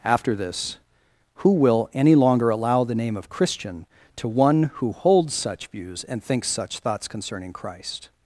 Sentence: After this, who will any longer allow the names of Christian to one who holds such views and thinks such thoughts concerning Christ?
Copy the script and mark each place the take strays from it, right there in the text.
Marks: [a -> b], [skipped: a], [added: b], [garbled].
After this, who will any longer allow the [names -> name] of Christian to one who holds such views and thinks such thoughts concerning Christ?